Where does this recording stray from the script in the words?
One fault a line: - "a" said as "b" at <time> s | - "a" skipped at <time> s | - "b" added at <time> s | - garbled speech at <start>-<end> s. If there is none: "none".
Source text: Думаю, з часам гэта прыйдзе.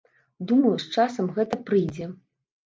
none